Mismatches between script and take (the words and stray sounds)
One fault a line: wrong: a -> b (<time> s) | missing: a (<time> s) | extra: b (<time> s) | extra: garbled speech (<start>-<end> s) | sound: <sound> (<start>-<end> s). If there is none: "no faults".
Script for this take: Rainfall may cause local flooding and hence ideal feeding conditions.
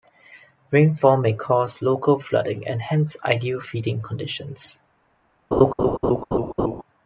sound: laugh (5.5-6.8 s)